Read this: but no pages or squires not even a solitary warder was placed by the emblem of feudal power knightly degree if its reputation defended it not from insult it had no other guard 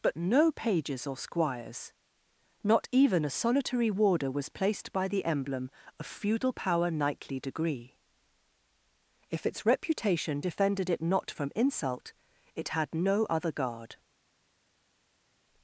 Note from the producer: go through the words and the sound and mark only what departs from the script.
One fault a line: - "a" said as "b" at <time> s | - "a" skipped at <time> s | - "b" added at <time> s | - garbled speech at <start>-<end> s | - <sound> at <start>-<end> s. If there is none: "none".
none